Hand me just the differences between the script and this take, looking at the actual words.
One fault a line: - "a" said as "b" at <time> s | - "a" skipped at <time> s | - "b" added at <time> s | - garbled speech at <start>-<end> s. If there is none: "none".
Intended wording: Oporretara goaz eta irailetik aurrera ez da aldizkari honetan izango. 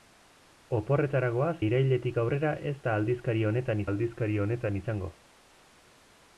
- "eta" skipped at 1.5 s
- "aldizkari honetan" added at 3.9 s